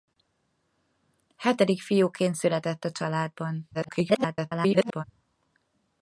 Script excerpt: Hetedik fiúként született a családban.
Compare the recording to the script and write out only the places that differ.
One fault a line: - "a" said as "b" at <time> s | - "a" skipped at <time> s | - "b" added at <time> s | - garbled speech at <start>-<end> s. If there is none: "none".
- garbled speech at 3.7-5.0 s